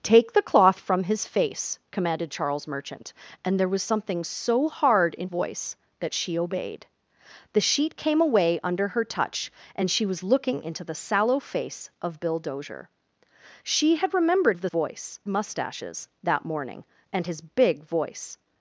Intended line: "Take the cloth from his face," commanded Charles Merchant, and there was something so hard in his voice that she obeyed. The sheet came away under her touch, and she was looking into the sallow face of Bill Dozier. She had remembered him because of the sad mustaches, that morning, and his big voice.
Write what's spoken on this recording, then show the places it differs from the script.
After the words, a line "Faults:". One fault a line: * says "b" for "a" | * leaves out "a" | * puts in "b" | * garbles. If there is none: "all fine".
"Take the cloth from his face," commanded Charles Merchant, and there was something so hard in voice that she obeyed. The sheet came away under her touch, and she was looking into the sallow face of Bill Dozier. She had remembered of the voice mustaches, that morning, and his big voice.
Faults:
* leaves out "his"
* leaves out "him because"
* says "voice" for "sad"